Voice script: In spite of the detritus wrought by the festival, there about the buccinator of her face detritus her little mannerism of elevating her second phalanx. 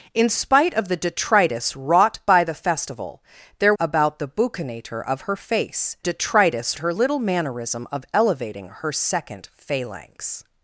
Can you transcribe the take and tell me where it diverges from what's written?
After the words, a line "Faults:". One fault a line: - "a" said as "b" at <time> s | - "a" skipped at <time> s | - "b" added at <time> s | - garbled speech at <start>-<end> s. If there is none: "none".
In spite of the detritus wrought by the festival, there about the buccinator of her face detritus her little mannerism of elevating her second phalanx.
Faults:
none